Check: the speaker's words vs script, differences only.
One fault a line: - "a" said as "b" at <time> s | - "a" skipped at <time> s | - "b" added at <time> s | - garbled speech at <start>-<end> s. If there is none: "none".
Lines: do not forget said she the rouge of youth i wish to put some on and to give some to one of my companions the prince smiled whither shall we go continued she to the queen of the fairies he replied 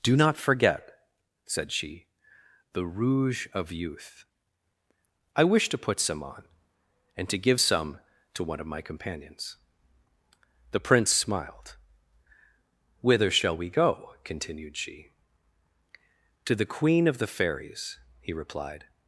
none